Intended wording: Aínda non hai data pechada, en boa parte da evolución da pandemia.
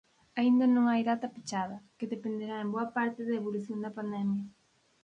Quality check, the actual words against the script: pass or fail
fail